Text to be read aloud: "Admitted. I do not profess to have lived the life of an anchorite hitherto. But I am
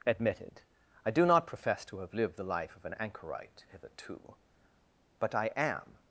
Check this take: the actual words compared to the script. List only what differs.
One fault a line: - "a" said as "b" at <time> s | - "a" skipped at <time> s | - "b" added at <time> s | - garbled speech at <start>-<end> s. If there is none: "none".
none